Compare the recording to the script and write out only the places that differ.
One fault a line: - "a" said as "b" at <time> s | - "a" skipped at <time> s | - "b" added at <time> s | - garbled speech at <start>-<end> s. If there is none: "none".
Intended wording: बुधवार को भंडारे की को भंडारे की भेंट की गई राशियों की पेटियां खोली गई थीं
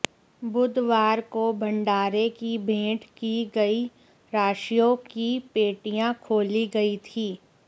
- "को भंडारे की" skipped at 2.6 s